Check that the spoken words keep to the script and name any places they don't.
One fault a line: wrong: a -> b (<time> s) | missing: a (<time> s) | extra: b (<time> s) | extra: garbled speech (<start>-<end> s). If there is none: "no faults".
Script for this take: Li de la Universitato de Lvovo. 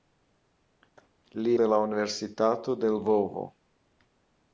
no faults